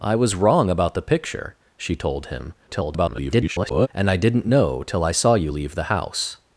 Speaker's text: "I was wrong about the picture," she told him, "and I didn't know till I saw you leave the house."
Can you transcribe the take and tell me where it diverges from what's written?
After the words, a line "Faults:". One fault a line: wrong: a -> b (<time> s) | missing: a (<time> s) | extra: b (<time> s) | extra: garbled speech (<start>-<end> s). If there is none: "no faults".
"I was wrong about the picture," she told him, [garbled] "and I didn't know till I saw you leave the house."
Faults:
extra: garbled speech (2.7-3.9 s)